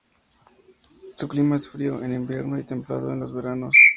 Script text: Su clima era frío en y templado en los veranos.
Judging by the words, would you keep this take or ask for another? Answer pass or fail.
fail